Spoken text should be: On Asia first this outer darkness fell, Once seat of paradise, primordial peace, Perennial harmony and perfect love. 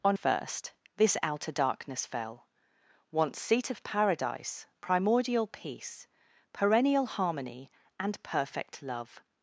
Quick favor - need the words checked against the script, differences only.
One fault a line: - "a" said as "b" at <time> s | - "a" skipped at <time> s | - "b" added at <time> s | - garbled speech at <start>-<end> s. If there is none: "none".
- "Asia" skipped at 0.2 s